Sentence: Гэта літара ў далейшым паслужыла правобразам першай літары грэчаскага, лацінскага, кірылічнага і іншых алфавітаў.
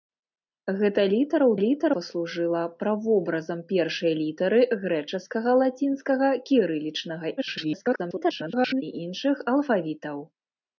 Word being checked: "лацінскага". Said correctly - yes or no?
yes